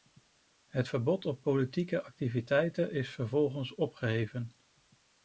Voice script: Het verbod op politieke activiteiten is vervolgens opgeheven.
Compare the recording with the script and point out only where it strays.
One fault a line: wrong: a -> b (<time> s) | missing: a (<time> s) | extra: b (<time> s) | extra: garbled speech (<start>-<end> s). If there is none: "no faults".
no faults